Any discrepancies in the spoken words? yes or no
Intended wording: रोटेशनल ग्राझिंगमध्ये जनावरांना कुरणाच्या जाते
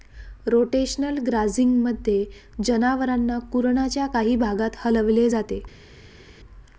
yes